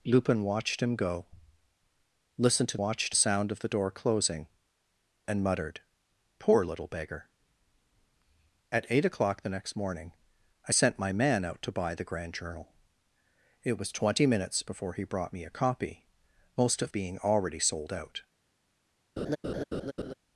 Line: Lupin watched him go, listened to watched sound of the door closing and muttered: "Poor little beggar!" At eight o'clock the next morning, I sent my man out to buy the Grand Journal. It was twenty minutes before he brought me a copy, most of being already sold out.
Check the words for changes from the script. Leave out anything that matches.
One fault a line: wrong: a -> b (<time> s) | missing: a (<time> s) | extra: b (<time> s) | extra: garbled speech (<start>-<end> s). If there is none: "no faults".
no faults